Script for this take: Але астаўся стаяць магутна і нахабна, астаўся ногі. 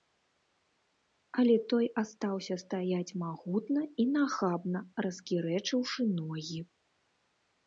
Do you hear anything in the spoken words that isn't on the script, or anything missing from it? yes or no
yes